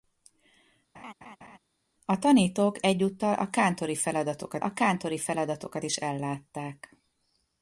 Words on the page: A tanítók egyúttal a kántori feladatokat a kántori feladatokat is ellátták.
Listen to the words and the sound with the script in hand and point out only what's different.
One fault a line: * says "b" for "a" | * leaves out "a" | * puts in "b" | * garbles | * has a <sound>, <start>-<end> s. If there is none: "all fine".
* has a laugh, 0.9-1.6 s